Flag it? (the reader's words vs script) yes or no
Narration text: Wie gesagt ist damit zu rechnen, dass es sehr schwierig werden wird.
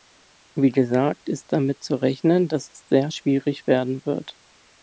no